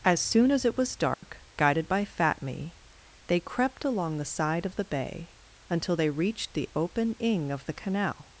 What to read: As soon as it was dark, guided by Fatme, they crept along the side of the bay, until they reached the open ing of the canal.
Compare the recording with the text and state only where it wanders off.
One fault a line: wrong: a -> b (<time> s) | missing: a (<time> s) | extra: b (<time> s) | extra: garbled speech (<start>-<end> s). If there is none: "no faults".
no faults